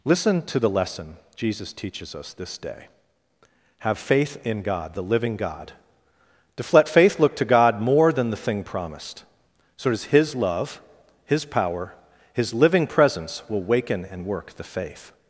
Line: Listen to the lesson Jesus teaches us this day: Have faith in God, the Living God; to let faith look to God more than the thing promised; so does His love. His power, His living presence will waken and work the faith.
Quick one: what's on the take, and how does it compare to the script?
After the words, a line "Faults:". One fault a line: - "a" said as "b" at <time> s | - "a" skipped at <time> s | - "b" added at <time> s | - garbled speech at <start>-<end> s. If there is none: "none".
Listen to the lesson Jesus teaches us this day: Have faith in God, the Living God; to let faith look to God more than the thing promised; so does His love. His power, His living presence will waken and work the faith.
Faults:
none